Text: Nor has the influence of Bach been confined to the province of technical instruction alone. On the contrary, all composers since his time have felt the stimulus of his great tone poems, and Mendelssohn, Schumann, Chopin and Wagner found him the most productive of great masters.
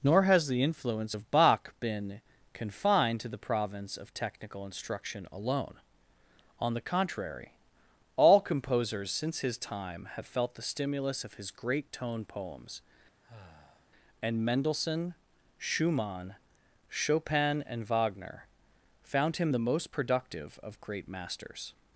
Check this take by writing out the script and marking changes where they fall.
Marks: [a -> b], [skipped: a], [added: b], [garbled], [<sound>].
Nor has the influence of Bach been confined to the province of technical instruction alone. On the contrary, all composers since his time have felt the stimulus of his great tone poems, [sigh] and Mendelssohn, Schumann, Chopin and Wagner found him the most productive of great masters.